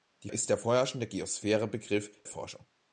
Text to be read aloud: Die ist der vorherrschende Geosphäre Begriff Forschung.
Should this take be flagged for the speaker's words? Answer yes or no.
no